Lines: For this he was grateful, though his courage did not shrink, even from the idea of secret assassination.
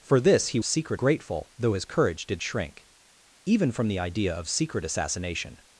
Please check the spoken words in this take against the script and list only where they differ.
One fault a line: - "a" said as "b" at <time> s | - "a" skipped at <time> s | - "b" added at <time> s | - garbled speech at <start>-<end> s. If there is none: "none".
- "was" said as "secret" at 0.6 s
- "not" skipped at 2.4 s